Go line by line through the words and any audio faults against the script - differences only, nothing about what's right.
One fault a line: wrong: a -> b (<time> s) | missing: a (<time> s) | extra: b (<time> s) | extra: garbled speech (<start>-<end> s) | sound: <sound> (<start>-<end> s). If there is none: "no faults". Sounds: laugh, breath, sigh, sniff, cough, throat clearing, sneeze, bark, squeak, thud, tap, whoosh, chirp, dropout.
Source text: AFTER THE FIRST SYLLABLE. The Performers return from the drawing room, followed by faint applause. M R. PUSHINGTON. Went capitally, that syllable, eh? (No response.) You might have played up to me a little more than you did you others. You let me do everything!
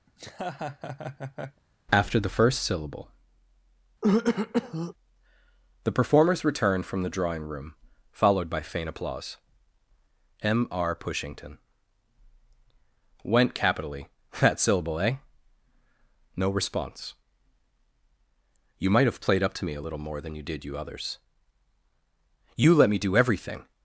sound: laugh (0.1-1.6 s)
sound: throat clearing (4.0-4.9 s)